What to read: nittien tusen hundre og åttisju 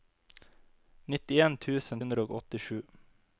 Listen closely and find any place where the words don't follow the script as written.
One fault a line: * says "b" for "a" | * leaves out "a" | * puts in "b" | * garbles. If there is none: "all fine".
all fine